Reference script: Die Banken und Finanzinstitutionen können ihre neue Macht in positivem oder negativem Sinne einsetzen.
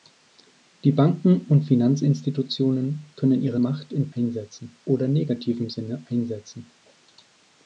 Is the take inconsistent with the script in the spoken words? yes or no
yes